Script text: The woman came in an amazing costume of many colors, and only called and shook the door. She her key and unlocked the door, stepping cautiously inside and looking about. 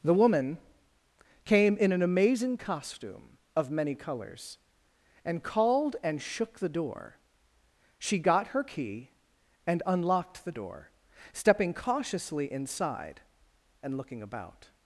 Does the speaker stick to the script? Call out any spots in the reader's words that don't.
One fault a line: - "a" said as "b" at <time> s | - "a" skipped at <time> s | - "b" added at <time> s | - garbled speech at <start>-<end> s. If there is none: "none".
- "only" skipped at 5.4 s
- "got" added at 8.2 s